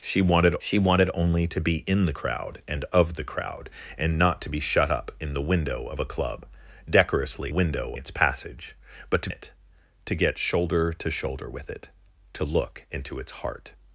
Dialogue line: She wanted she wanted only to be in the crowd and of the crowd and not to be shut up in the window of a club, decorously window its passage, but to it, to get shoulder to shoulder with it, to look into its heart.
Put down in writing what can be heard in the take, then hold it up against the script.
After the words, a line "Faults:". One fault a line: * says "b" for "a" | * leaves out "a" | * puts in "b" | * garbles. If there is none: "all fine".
She wanted she wanted only to be in the crowd and of the crowd and not to be shut up in the window of a club, decorously window its passage, but to it, to get shoulder to shoulder with it, to look into its heart.
Faults:
all fine